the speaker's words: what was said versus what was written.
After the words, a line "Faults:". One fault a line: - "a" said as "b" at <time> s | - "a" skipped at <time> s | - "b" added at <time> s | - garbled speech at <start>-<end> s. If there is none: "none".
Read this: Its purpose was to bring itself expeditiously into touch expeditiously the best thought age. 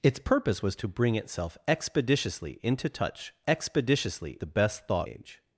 Its purpose was to bring itself expeditiously into touch expeditiously the best thought age.
Faults:
none